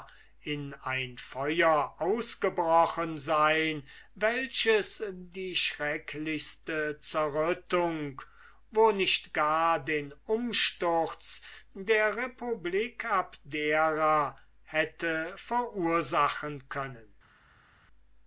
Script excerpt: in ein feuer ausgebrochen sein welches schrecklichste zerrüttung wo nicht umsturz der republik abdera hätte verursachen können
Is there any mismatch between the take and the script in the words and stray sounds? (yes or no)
yes